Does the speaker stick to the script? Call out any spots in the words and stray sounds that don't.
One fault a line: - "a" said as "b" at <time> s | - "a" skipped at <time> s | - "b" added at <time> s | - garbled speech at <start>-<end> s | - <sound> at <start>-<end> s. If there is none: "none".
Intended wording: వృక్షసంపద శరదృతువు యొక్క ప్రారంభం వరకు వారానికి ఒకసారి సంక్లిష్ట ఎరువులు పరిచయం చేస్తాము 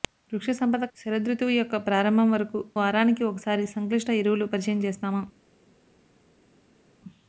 none